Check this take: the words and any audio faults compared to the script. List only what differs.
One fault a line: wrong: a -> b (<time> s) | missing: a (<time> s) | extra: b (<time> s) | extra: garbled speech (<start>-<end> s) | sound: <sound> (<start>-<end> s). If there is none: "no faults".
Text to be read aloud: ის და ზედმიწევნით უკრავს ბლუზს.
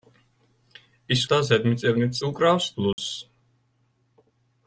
sound: dropout (2.9-3.0 s)